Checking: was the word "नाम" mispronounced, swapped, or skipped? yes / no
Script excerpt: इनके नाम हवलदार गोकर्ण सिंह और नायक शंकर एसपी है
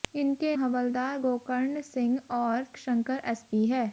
yes